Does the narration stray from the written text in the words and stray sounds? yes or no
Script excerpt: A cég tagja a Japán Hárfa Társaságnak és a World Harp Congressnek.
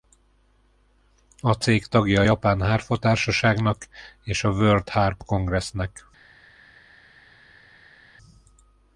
no